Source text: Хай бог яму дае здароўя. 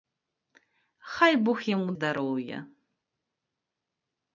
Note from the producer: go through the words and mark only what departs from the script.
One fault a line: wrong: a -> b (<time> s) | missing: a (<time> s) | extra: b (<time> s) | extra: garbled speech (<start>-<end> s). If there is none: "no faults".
missing: дае (1.9 s)